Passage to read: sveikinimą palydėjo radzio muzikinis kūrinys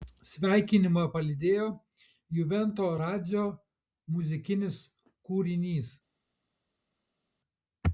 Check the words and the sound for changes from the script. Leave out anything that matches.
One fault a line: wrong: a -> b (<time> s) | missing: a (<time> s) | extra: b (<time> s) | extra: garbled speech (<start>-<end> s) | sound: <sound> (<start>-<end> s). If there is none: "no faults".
extra: juvento (2.4 s)